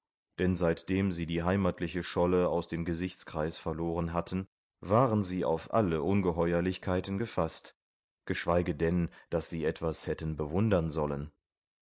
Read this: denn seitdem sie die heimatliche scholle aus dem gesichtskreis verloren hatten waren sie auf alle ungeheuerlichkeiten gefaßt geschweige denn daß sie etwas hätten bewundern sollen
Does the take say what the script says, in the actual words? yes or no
yes